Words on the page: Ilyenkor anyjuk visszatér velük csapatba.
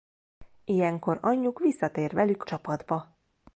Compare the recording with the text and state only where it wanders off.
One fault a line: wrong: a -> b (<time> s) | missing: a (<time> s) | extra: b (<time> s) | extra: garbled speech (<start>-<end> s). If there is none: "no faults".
no faults